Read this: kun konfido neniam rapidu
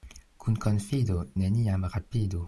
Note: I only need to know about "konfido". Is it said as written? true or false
true